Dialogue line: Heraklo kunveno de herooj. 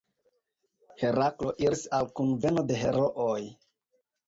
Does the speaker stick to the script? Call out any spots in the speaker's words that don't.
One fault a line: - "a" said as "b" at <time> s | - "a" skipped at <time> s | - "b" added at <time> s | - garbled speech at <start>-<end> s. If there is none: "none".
- "iris al" added at 1.7 s